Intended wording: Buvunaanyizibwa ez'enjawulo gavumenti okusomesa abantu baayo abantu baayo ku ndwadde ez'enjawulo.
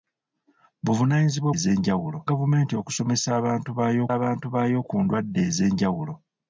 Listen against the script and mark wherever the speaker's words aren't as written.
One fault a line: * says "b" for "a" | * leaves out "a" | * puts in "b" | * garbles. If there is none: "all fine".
all fine